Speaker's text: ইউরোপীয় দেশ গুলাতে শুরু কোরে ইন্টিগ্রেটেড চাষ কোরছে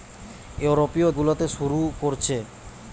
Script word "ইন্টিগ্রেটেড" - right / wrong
wrong